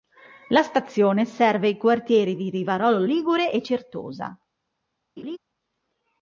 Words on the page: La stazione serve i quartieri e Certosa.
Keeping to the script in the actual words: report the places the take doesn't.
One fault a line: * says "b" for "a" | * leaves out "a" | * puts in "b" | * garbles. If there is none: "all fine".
* puts in "di Rivarolo Ligure"